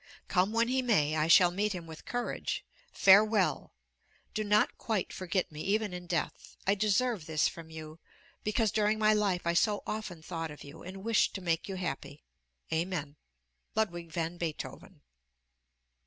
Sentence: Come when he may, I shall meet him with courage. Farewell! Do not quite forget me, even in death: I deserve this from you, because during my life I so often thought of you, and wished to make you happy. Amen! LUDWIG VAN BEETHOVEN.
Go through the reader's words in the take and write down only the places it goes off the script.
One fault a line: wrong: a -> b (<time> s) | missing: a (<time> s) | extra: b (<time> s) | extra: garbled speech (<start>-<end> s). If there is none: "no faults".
no faults